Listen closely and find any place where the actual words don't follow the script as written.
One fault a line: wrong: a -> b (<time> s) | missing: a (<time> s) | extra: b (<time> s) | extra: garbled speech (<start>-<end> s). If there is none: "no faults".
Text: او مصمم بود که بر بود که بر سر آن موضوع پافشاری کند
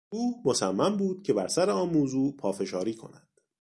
missing: بود که بر (1.5 s)